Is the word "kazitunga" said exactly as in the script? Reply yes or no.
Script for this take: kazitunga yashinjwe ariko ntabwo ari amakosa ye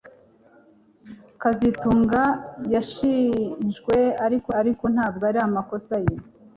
yes